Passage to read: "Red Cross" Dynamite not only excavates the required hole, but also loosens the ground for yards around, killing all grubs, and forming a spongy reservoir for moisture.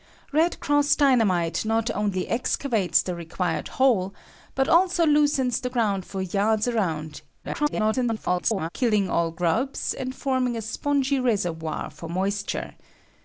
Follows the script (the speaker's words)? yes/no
no